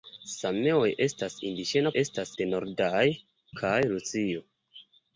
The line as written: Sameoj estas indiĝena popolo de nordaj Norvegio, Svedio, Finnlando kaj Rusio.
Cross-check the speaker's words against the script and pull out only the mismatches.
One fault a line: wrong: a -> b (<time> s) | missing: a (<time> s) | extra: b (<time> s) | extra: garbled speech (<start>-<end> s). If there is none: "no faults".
wrong: popolo -> estas (2.0 s)
missing: Norvegio Svedio Finnlando (3.0 s)